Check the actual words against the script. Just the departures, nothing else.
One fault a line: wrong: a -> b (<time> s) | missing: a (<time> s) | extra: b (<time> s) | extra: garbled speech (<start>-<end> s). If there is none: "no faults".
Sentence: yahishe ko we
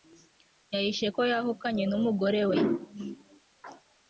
extra: yahukanye n'umugore (1.3 s)